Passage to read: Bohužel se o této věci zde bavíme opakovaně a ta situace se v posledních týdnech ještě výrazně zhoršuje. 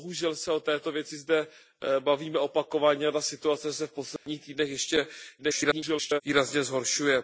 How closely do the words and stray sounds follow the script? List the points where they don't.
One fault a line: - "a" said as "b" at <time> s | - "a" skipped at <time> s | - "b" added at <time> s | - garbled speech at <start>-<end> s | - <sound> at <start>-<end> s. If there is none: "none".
- dropout at 4.2-4.3 s
- garbled speech at 5.4-6.2 s